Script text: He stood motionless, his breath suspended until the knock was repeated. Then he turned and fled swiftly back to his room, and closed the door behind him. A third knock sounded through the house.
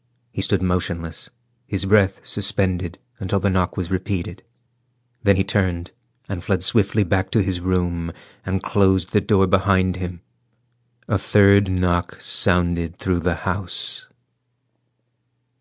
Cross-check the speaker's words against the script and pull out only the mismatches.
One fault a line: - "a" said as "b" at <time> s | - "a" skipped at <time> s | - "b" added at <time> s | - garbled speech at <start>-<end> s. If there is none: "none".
none